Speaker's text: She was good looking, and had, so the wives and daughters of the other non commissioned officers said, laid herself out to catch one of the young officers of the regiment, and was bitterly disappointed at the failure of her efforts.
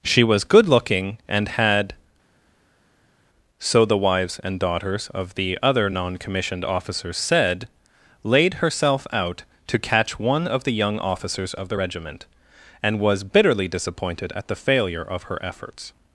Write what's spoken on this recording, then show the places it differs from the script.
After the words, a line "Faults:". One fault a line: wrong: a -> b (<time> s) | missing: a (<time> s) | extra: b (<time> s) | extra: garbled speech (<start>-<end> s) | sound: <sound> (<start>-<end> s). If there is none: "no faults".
She was good looking, and had, so the wives and daughters of the other non commissioned officers said, laid herself out to catch one of the young officers of the regiment, and was bitterly disappointed at the failure of her efforts.
Faults:
no faults